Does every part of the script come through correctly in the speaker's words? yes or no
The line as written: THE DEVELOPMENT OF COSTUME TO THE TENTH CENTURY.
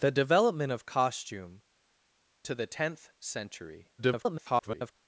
no